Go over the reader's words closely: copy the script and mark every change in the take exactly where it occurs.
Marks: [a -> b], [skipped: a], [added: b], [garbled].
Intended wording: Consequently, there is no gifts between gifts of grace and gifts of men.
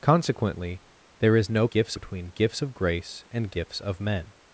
Consequently, there is no gifts between gifts of grace and gifts of men.